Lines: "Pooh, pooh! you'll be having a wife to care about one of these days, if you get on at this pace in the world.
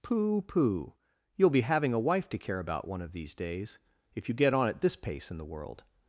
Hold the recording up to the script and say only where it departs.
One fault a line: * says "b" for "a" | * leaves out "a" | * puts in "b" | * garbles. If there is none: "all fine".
all fine